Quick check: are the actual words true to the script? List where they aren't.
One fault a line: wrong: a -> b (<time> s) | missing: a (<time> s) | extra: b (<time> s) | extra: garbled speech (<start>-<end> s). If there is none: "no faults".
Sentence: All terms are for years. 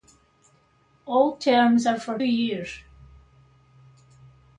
no faults